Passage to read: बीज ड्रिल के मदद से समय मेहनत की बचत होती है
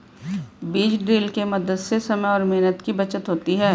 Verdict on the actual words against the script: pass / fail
fail